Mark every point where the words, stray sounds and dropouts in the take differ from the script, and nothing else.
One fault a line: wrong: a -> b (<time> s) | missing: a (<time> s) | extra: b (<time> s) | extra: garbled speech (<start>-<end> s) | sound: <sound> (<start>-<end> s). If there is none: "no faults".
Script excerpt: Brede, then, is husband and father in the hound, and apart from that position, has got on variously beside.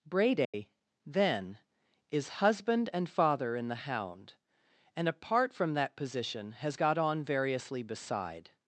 sound: dropout (0.4-0.5 s)